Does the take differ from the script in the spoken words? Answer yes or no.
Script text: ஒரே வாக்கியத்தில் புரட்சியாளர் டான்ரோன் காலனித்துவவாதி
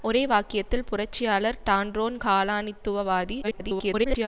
yes